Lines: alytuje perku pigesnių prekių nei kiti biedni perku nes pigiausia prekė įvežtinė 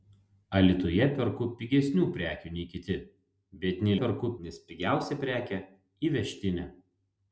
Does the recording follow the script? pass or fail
pass